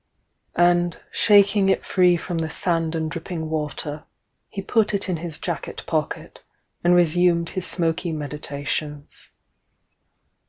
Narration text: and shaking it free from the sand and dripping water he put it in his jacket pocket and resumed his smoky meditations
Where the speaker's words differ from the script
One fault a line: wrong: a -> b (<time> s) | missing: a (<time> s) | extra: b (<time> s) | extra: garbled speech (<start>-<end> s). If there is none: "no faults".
no faults